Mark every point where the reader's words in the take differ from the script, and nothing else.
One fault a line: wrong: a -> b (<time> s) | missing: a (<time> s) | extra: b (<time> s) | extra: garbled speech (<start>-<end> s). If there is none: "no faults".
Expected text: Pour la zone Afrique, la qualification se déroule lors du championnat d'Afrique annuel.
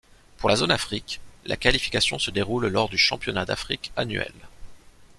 no faults